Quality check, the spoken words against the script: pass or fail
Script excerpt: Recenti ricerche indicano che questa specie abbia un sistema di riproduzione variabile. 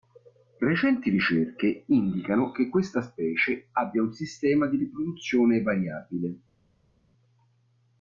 pass